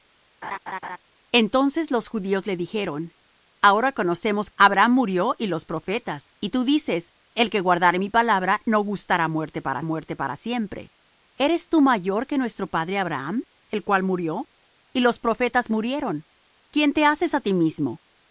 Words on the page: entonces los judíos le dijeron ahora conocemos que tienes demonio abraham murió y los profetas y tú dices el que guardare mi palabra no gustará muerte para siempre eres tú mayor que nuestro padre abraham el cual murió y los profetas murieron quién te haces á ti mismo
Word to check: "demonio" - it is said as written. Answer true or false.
false